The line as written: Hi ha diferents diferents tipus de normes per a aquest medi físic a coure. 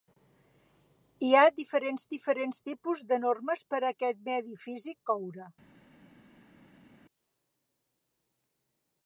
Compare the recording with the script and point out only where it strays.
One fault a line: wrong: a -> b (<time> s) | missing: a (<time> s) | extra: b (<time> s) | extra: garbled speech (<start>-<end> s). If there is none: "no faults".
no faults